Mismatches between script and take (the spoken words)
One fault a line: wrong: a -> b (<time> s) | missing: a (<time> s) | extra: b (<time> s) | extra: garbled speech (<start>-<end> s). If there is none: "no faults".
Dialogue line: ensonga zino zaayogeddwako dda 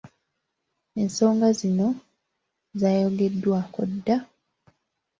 no faults